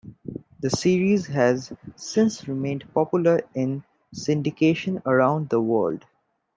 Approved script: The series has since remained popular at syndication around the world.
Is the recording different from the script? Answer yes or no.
yes